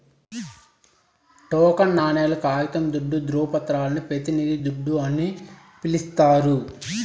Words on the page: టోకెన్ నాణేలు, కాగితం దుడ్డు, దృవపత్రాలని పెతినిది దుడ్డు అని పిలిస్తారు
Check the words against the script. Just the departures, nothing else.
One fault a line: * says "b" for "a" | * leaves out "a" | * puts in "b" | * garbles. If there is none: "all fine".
all fine